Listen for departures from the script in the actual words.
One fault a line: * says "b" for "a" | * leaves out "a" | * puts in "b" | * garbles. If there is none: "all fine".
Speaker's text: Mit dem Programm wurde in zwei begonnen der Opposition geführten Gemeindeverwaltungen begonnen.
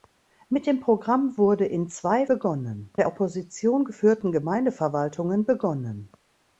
all fine